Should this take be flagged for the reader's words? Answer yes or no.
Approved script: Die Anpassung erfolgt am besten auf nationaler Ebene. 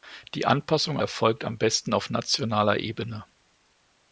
no